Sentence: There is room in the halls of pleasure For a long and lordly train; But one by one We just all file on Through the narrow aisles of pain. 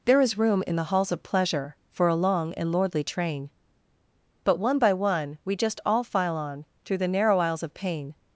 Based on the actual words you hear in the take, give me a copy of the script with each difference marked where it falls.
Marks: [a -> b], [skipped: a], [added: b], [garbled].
There is room in the halls of pleasure For a long and lordly train; But one by one We just all file on Through the narrow aisles of pain.